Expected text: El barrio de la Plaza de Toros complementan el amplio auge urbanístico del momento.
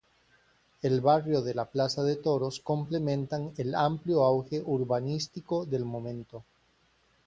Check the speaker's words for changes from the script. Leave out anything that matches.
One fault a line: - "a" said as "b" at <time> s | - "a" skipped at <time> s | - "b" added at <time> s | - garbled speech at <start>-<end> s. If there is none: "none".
none